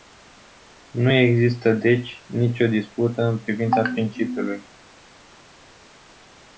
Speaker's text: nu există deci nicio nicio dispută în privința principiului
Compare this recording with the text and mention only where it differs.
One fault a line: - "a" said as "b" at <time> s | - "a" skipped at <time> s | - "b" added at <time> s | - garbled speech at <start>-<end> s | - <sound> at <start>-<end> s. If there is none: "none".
- "nicio" skipped at 2.7 s